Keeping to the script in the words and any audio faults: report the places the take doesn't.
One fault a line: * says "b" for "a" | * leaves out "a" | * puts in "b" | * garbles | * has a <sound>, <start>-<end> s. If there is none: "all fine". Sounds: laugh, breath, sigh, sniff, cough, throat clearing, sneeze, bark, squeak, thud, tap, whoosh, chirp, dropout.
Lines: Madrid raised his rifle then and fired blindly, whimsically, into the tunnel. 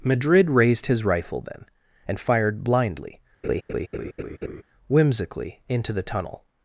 * has a laugh, 3.4-4.6 s